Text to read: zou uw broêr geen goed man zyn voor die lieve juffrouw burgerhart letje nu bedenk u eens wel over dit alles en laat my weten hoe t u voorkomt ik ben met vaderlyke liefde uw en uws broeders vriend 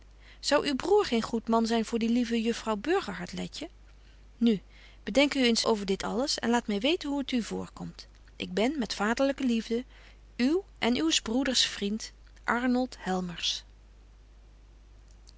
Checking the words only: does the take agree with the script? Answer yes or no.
no